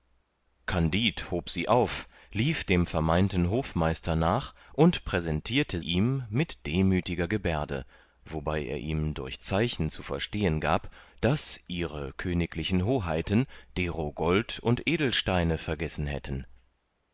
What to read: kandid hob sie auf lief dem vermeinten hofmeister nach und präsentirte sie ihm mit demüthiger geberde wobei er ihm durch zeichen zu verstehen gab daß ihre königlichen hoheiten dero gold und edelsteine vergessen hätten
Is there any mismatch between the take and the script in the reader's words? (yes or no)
yes